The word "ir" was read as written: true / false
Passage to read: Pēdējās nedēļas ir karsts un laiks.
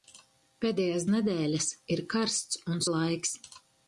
true